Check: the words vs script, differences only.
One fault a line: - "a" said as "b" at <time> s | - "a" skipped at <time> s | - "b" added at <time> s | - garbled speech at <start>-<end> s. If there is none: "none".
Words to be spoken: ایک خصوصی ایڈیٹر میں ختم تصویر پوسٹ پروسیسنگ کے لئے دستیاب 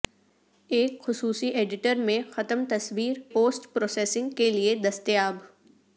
none